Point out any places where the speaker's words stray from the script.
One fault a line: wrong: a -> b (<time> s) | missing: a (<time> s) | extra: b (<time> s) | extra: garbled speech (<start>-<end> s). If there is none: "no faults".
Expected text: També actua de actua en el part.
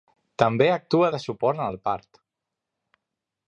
wrong: actua -> suport (1.2 s)